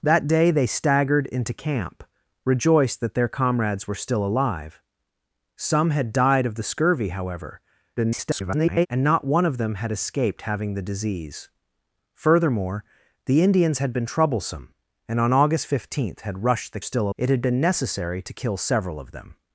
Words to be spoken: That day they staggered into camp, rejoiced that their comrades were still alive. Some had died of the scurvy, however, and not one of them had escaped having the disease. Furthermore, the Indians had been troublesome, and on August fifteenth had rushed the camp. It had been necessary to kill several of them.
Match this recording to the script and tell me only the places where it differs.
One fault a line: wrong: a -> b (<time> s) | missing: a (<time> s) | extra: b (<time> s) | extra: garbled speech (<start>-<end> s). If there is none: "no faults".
extra: garbled speech (8.0-8.9 s)
wrong: camp -> still (16.8 s)